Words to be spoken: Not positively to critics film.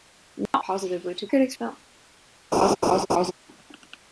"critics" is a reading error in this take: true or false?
false